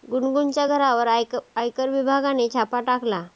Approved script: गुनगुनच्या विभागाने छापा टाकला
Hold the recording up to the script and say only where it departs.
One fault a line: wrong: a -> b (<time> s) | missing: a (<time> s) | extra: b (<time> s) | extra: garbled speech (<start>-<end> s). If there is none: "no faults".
extra: घरावर आयकर (0.6 s)